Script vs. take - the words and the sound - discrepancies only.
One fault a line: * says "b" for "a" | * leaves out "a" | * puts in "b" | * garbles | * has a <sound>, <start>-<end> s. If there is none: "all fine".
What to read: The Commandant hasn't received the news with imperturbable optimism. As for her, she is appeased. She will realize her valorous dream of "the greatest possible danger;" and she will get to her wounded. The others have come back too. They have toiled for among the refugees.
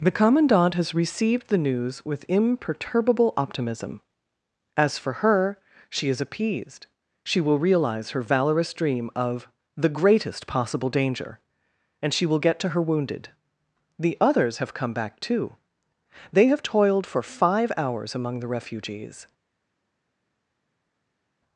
* says "has" for "hasn't"
* puts in "five hours"